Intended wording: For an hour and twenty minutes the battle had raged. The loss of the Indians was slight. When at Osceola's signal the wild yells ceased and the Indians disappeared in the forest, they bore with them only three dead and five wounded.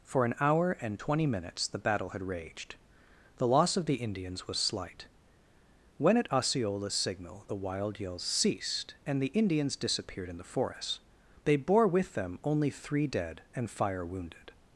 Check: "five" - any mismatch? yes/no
yes